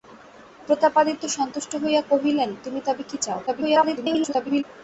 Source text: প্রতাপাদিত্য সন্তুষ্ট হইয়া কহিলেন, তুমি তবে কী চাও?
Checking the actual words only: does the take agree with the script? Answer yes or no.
no